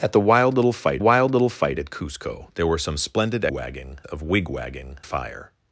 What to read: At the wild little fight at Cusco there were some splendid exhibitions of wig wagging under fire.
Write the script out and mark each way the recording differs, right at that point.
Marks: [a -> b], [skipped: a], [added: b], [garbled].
At the wild little fight [added: wild little fight] at Cusco there were some splendid [exhibitions -> wagging] of wig wagging [skipped: under] fire.